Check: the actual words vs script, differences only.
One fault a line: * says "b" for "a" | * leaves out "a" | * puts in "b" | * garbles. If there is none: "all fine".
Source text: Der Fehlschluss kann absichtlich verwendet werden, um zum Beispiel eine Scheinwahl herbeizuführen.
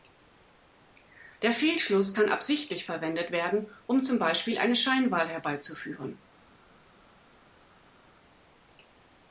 all fine